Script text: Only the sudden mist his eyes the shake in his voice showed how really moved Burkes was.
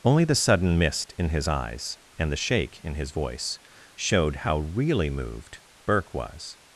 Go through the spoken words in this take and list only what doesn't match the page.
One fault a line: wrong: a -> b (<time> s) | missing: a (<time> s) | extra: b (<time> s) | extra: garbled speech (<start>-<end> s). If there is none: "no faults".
extra: in (1.2 s)
extra: and (2.2 s)
wrong: Burkes -> Burke (5.8 s)